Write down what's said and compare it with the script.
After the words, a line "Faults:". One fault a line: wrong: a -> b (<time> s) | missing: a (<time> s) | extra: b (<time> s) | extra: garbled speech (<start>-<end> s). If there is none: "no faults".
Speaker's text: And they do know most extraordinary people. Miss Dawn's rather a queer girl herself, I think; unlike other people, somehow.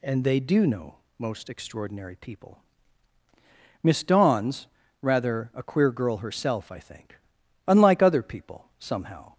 And they do know most extraordinary people. Miss Dawn's rather a queer girl herself, I think; unlike other people, somehow.
Faults:
no faults